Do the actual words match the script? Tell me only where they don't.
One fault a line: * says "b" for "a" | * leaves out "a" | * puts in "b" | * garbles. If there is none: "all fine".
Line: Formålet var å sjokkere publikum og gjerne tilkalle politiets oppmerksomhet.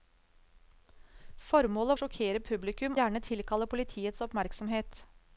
* leaves out "var"
* leaves out "og"